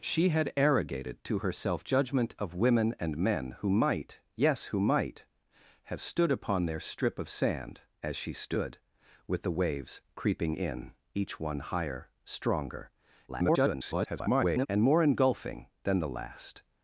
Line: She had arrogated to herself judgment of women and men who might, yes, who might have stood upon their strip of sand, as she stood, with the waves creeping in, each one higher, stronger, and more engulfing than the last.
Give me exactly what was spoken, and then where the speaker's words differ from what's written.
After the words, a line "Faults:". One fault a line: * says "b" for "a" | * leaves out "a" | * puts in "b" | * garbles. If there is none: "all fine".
She had arrogated to herself judgment of women and men who might, yes, who might have stood upon their strip of sand, as she stood, with the waves creeping in, each one higher, stronger, [garbled] and more engulfing than the last.
Faults:
* garbles